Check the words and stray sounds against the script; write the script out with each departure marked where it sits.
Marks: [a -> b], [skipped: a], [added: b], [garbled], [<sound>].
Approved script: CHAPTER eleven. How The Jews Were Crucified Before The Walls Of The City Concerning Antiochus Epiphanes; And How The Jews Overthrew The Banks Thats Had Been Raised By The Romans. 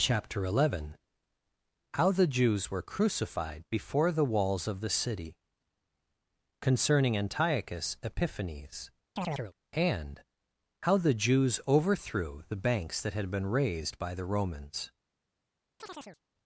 CHAPTER eleven. How The Jews Were Crucified Before The Walls Of The City Concerning Antiochus Epiphanes; [chirp] And How The Jews Overthrew The Banks [Thats -> That] Had Been Raised By The Romans. [chirp]